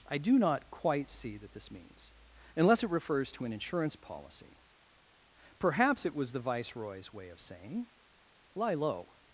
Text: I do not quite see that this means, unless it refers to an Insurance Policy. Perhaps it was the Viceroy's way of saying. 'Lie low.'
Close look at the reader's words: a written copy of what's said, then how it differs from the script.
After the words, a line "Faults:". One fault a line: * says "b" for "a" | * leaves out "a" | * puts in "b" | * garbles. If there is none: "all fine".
I do not quite see that this means, unless it refers to an Insurance Policy. Perhaps it was the Viceroy's way of saying. 'Lie low.'
Faults:
all fine